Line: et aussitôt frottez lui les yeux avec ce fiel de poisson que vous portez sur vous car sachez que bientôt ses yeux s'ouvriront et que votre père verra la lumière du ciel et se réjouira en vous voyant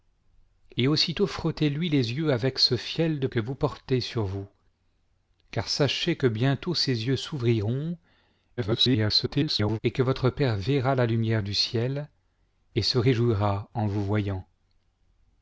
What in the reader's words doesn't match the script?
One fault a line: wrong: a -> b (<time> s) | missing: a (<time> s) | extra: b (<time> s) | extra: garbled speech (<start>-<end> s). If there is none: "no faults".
missing: poisson (3.3 s)
extra: garbled speech (8.6-9.8 s)